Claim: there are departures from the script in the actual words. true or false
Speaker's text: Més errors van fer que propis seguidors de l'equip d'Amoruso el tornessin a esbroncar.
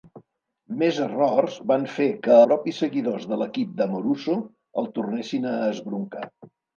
false